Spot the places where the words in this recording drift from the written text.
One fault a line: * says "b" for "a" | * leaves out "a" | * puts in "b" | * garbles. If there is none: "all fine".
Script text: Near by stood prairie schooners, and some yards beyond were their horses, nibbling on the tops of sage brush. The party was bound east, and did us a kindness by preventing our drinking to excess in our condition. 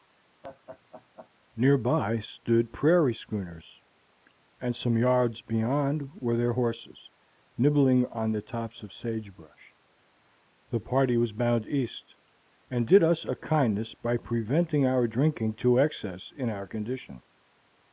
all fine